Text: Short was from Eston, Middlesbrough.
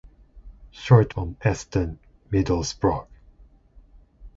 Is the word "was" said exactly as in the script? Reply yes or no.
no